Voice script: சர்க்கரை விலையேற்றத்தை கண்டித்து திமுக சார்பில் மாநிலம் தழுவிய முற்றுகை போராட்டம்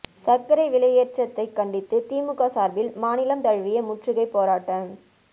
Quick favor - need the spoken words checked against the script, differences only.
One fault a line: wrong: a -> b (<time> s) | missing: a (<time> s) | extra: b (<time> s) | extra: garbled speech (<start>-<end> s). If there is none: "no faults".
no faults